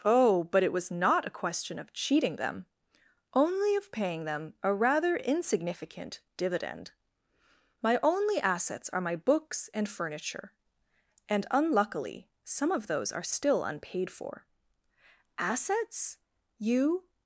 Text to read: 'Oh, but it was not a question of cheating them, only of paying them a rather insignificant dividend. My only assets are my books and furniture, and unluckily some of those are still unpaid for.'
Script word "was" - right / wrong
right